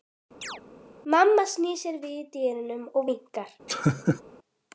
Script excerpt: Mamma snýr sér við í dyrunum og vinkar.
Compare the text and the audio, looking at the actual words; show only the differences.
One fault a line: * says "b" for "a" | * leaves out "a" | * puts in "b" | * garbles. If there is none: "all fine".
all fine